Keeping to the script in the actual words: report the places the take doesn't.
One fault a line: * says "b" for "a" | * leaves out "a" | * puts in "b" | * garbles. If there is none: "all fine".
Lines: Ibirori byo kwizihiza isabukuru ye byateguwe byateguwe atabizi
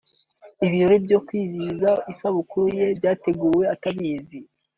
* leaves out "byateguwe"